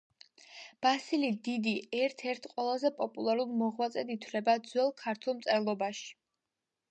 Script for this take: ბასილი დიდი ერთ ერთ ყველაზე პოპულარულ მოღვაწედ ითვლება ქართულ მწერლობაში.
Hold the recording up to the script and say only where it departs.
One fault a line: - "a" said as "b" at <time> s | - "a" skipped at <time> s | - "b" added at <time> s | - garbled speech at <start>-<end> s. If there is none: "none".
- "ძველ" added at 4.7 s